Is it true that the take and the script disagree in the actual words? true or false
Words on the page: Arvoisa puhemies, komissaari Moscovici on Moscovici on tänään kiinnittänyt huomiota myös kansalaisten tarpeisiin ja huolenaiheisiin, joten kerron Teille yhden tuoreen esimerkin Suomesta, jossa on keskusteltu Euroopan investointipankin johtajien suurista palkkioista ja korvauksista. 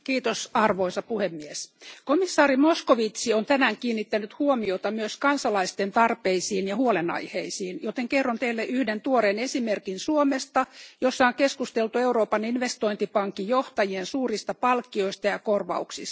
true